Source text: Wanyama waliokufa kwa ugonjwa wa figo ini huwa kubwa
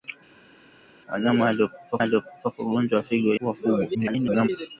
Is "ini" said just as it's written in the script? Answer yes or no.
no